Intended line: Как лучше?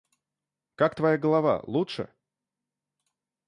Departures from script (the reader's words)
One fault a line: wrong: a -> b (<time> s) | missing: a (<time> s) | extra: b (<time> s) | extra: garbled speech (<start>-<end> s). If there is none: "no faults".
extra: твоя голова (0.9 s)